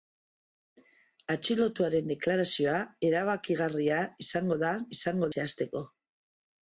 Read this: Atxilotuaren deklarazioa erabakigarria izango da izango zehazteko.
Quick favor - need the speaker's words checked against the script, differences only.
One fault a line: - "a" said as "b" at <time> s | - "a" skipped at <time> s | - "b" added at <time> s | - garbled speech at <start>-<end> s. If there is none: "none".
none